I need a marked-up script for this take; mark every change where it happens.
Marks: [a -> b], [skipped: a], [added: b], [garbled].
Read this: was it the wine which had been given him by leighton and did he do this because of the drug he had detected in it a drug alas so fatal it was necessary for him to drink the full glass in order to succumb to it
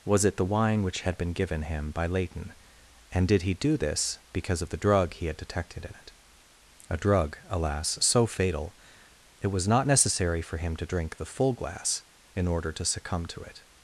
was it the wine which had been given him by leighton and did he do this because of the drug he had detected in it a drug alas so fatal it was [added: not] necessary for him to drink the full glass in order to succumb to it